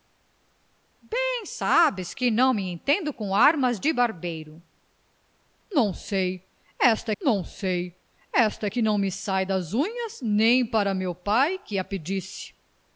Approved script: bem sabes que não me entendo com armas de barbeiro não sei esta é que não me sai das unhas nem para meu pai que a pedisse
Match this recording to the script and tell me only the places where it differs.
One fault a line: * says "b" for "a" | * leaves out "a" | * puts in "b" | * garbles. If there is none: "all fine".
* puts in "não sei esta"